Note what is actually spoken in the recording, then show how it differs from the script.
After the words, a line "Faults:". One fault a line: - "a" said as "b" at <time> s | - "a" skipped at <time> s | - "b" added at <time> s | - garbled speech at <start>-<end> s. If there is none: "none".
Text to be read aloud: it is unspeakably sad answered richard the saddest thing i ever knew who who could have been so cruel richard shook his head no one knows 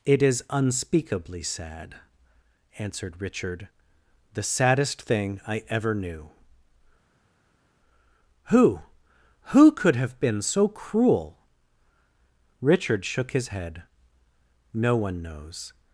it is unspeakably sad answered richard the saddest thing i ever knew who who could have been so cruel richard shook his head no one knows
Faults:
none